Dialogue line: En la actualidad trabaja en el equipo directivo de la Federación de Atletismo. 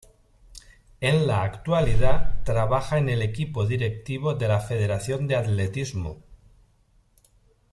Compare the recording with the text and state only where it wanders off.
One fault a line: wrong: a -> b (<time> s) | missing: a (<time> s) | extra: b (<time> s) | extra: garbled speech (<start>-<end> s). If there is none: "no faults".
no faults